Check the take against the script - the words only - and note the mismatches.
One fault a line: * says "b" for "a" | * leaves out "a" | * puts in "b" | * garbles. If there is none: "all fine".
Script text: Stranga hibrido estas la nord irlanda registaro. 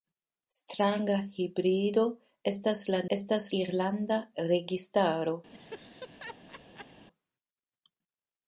* says "estas" for "nord"